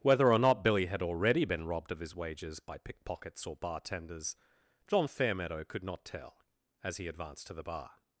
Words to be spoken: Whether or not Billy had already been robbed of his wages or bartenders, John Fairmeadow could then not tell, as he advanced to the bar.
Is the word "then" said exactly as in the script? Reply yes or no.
no